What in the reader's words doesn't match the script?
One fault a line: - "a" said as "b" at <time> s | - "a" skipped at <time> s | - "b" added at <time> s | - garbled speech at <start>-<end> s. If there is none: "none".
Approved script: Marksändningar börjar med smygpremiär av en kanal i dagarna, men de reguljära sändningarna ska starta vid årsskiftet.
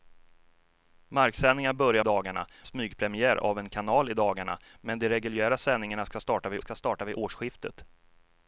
- "med" said as "dagarna" at 2.0 s
- "ska starta vid" added at 6.6 s